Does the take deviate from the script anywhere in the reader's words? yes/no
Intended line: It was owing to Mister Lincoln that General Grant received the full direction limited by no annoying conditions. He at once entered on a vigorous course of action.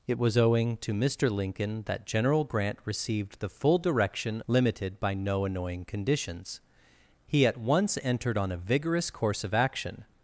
no